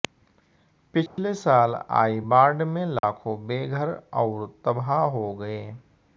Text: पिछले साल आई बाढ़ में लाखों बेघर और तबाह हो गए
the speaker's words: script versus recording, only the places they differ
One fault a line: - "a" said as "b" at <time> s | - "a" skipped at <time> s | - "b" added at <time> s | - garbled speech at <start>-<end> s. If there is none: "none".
none